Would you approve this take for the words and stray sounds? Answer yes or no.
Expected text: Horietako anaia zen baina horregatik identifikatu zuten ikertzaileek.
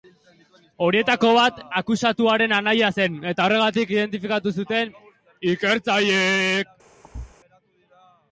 no